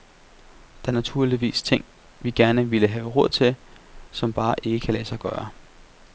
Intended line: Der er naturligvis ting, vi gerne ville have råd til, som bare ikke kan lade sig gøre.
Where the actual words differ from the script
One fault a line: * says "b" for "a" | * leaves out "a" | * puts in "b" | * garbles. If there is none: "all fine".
all fine